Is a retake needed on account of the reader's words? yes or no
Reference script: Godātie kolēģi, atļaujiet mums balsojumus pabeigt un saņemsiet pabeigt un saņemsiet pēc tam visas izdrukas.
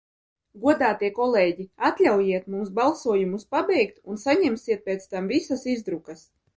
yes